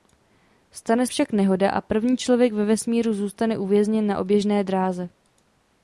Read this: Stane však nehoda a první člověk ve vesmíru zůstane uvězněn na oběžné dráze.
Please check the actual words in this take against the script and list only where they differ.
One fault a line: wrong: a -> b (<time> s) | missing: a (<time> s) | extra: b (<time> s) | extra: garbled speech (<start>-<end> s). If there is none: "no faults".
no faults